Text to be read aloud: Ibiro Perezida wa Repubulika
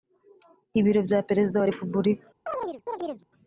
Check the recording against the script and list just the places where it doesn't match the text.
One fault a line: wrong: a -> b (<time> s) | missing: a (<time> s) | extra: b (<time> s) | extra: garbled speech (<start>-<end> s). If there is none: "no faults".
extra: bya (1.1 s)